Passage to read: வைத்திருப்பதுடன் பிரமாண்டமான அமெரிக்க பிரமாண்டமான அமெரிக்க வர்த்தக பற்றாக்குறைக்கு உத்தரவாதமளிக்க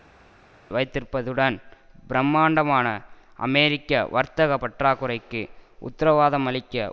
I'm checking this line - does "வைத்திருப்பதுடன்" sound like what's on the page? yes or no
yes